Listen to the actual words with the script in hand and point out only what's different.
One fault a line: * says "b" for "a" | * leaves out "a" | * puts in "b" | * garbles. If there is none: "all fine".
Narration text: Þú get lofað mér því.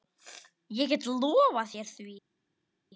* says "Ég" for "Þú"
* says "þér" for "mér"